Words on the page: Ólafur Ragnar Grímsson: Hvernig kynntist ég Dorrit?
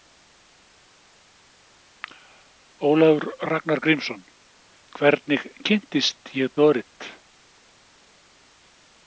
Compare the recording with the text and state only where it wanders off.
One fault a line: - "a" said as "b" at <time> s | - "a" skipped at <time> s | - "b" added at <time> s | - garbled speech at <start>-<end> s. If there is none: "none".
none